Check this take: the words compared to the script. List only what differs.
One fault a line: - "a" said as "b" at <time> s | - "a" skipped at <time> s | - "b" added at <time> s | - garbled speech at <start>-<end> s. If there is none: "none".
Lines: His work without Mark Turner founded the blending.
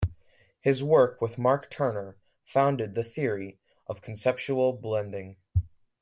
- "without" said as "with" at 1.2 s
- "theory of conceptual" added at 3.0 s